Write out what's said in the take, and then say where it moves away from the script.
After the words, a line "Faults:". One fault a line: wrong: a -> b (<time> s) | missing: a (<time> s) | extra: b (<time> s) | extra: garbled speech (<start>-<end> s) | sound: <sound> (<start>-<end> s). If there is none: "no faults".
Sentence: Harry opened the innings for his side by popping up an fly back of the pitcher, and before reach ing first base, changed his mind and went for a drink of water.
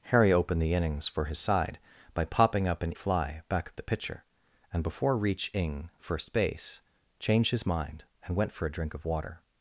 Harry opened the innings for his side by popping up an fly back of the pitcher, and before reach ing first base, changed his mind and went for a drink of water.
Faults:
no faults